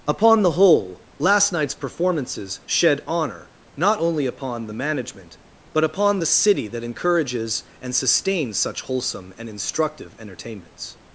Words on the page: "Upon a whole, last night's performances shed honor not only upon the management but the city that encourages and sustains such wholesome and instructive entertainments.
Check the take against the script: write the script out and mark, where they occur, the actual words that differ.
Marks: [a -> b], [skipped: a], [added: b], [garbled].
"Upon [a -> the] whole, last night's performances shed honor not only upon the management but [added: upon] the city that encourages and sustains such wholesome and instructive entertainments.